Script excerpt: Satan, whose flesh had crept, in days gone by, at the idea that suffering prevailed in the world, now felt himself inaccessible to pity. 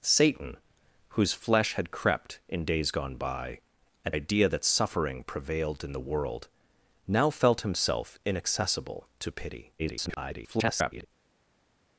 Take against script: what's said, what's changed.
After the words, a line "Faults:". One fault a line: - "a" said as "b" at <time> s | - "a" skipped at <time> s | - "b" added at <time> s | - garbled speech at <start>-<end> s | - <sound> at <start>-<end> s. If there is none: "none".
Satan, whose flesh had crept, in days gone by, at idea that suffering prevailed in the world, now felt himself inaccessible to pity. [garbled]
Faults:
- "the" skipped at 4.2 s
- garbled speech at 9.8-11.1 s